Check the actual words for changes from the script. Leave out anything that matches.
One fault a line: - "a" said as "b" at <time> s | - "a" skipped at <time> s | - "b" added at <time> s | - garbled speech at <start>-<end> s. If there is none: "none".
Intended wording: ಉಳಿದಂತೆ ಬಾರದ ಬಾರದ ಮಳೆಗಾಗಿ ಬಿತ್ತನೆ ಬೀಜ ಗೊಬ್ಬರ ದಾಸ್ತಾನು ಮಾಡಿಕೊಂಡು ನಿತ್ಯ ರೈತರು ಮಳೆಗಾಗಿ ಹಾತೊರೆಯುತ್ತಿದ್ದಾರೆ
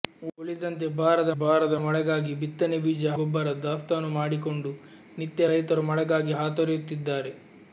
none